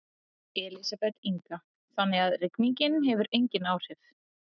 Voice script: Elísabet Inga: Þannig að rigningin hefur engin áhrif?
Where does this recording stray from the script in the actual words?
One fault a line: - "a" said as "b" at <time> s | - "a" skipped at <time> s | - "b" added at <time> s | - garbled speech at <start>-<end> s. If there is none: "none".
none